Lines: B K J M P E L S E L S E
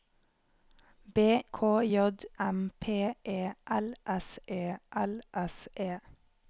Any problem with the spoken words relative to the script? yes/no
no